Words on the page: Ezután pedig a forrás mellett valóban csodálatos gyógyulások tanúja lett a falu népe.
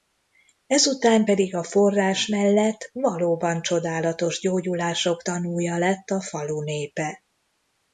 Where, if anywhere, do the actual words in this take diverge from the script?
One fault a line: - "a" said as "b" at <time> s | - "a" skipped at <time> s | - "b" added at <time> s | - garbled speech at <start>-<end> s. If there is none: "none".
none